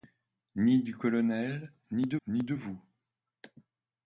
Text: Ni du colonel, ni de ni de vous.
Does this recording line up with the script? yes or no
yes